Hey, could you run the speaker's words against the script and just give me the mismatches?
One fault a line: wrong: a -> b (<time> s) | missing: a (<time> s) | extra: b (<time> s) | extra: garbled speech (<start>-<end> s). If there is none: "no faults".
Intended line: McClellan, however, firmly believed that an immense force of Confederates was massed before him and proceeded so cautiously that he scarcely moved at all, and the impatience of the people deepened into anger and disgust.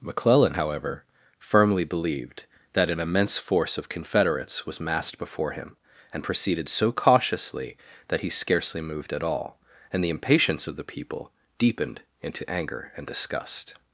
no faults